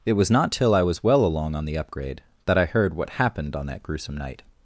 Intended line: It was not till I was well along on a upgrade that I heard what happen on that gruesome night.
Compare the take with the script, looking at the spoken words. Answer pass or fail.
fail